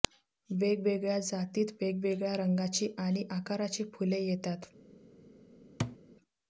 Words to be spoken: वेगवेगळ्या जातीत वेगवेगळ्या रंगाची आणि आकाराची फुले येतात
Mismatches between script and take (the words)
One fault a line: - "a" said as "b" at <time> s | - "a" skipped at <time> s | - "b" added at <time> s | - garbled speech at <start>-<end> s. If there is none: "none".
none